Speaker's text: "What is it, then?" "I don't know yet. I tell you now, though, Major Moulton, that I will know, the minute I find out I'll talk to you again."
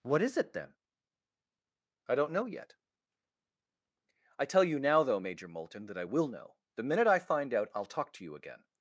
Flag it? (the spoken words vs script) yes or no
no